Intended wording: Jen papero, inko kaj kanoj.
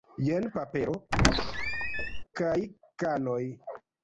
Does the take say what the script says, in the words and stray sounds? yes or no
no